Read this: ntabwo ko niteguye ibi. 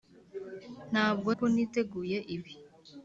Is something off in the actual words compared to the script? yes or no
no